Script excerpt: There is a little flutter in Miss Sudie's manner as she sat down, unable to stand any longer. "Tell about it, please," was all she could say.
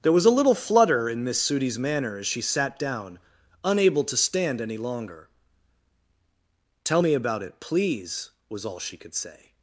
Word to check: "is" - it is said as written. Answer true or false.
false